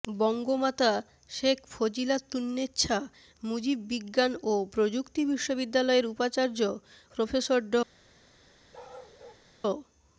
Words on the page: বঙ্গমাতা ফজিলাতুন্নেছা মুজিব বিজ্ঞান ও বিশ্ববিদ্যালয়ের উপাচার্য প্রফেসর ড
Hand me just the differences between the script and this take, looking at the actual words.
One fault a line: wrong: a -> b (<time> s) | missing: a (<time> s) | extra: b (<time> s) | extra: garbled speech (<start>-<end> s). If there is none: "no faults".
extra: শেখ (1.3 s)
extra: প্রযুক্তি (4.7 s)